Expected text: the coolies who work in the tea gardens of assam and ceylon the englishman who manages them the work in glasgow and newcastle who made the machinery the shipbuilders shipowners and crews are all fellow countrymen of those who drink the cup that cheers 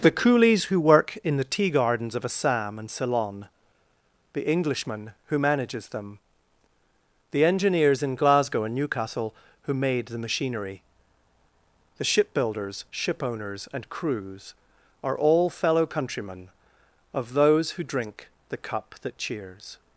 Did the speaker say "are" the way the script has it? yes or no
yes